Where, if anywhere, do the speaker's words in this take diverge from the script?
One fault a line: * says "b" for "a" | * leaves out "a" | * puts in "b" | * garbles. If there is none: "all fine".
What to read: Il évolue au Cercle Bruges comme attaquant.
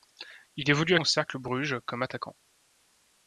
all fine